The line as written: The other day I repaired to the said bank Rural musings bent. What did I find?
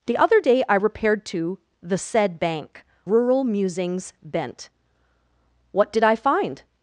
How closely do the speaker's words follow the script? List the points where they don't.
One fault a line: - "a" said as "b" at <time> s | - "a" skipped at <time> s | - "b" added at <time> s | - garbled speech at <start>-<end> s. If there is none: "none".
none